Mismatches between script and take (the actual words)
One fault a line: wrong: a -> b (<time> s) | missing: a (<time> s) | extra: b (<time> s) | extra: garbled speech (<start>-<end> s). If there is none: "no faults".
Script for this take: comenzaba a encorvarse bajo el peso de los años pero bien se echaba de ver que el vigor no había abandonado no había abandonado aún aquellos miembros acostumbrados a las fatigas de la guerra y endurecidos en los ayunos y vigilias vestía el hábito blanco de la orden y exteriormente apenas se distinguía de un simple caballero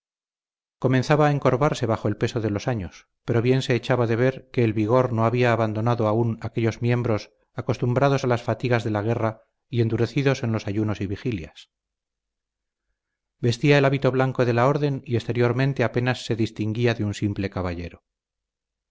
missing: no había abandonado (6.1 s)